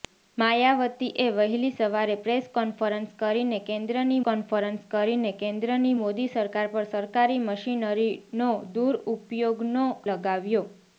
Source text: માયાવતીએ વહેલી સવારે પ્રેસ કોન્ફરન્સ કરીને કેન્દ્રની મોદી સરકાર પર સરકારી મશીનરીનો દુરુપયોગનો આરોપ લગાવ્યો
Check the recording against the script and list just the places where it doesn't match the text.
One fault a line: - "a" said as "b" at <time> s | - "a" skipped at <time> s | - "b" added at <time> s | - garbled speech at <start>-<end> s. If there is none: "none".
- "કોન્ફરન્સ કરીને કેન્દ્રની" added at 4.2 s
- "આરોપ" skipped at 9.8 s